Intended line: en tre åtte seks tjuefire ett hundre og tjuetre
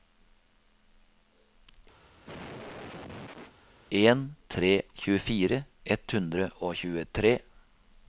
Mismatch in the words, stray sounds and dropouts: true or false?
true